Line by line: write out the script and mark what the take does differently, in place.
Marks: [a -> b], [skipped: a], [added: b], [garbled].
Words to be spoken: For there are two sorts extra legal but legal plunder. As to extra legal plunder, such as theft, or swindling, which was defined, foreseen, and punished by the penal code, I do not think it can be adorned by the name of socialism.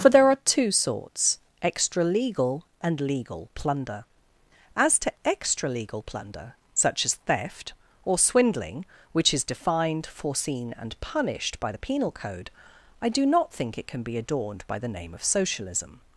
For there are two sorts extra legal [but -> and] legal plunder. As to extra legal plunder, such as theft, or swindling, which [was -> is] defined, foreseen, and punished by the penal code, I do not think it can be adorned by the name of socialism.